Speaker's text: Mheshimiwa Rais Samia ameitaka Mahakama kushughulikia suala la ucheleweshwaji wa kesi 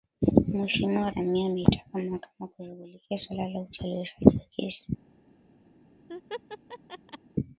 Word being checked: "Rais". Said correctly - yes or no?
no